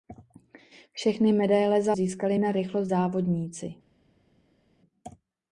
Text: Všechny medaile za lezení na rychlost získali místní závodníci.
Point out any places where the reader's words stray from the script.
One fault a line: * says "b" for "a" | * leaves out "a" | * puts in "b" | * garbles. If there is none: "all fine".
* says "získali" for "lezení"
* leaves out "získali místní"